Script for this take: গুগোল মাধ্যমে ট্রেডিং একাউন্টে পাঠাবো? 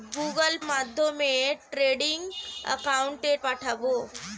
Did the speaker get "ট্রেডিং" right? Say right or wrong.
right